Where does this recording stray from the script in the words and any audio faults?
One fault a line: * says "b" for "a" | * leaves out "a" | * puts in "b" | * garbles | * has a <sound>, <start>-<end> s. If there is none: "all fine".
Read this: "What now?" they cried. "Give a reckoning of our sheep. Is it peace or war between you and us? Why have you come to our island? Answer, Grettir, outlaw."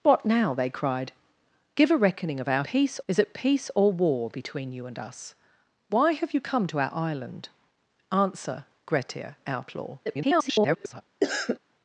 * says "peace" for "sheep"
* garbles
* has a cough, 11.2-11.6 s